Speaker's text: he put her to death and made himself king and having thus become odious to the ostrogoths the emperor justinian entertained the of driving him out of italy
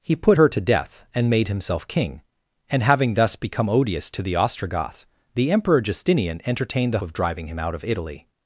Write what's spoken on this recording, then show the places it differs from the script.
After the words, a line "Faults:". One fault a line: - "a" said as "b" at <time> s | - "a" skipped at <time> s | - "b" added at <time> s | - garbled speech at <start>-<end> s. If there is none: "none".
he put her to death and made himself king and having thus become odious to the ostrogoths the emperor justinian entertained the of driving him out of italy
Faults:
none